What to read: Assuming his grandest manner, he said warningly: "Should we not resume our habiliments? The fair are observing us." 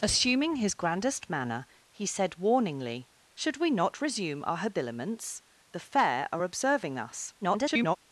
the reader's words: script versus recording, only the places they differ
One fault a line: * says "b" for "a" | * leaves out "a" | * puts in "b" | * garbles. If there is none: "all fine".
* garbles